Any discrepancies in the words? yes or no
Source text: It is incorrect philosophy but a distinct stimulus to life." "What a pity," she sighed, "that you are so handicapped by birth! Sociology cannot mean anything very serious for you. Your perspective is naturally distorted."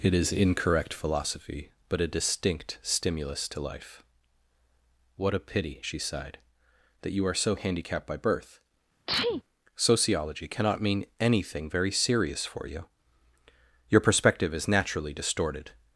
no